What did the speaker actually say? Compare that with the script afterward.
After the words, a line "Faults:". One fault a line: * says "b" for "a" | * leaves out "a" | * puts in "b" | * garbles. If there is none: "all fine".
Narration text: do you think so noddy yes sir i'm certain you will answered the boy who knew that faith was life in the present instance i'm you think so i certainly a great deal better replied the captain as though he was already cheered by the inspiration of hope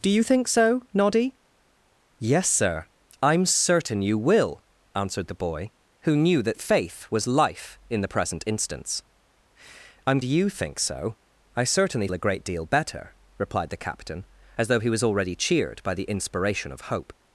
do you think so noddy yes sir i'm certain you will answered the boy who knew that faith was life in the present instance i'm you think so i certainly a great deal better replied the captain as though he was already cheered by the inspiration of hope
Faults:
all fine